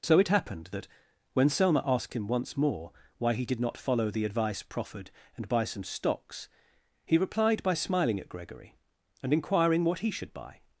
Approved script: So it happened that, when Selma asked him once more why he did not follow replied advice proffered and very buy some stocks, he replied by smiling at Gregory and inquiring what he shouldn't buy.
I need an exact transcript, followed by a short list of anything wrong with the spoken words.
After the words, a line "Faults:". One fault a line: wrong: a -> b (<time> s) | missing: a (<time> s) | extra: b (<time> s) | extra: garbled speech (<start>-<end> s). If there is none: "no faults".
So it happened that, when Selma asked him once more why he did not follow the advice proffered and buy some stocks, he replied by smiling at Gregory and inquiring what he should buy.
Faults:
wrong: replied -> the (4.1 s)
missing: very (5.5 s)
wrong: shouldn't -> should (10.1 s)